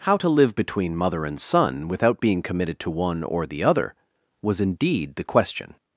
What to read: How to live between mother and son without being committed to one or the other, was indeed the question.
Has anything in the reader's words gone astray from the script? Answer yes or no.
no